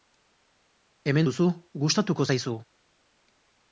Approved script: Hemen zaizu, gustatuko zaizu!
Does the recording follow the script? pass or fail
fail